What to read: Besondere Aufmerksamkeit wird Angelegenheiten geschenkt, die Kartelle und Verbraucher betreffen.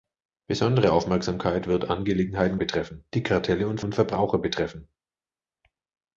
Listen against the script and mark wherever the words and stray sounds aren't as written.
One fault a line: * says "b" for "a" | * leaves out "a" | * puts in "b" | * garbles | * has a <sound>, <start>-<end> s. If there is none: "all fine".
* says "betreffen" for "geschenkt"
* puts in "und"